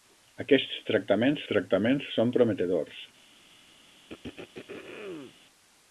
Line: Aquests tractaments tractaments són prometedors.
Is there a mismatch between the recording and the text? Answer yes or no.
no